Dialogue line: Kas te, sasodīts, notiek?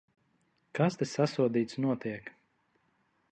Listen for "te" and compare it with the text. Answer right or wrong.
right